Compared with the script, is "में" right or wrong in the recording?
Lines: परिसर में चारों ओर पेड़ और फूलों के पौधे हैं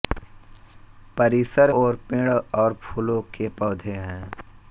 wrong